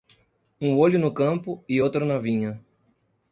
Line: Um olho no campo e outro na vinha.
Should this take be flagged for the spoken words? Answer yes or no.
no